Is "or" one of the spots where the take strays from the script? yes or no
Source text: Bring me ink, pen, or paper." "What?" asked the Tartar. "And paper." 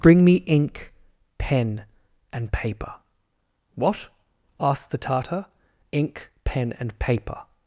yes